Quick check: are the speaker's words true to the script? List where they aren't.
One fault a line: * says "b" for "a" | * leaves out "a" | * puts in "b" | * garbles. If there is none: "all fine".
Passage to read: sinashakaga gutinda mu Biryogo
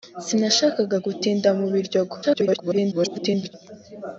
* garbles